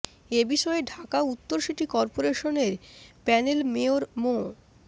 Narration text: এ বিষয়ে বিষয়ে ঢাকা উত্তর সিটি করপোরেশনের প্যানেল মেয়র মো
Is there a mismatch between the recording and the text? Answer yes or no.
yes